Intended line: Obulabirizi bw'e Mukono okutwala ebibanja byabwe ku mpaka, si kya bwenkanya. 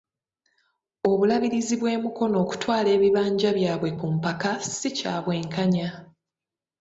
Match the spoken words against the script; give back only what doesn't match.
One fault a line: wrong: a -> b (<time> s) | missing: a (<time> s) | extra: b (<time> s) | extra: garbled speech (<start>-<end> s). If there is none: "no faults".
no faults